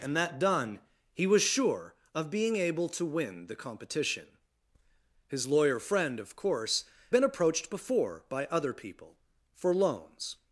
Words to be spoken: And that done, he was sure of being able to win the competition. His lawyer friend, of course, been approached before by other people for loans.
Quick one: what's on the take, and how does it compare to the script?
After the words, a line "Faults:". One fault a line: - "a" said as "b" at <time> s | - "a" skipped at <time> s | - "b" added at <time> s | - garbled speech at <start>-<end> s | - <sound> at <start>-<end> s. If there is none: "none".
And that done, he was sure of being able to win the competition. His lawyer friend, of course, been approached before by other people for loans.
Faults:
none